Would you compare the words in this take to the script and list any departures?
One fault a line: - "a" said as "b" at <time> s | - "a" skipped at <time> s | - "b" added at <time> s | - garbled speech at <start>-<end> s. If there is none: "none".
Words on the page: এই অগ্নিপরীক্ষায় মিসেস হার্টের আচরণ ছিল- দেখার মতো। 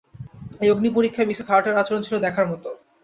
none